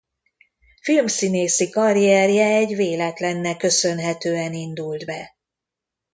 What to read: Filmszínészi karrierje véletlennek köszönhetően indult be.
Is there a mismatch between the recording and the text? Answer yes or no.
yes